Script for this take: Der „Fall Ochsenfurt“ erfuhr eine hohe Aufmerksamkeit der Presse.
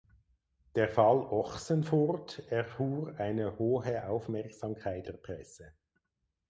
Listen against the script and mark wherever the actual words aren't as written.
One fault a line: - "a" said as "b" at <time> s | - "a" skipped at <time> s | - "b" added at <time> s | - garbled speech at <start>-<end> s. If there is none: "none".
none